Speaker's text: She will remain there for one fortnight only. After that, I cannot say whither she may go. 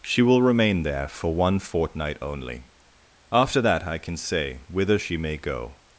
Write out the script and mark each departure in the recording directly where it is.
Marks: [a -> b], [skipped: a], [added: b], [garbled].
She will remain there for one fortnight only. After that, I [cannot -> can] say whither she may go.